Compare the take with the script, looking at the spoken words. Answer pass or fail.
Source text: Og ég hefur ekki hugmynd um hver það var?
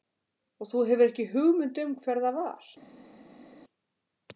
fail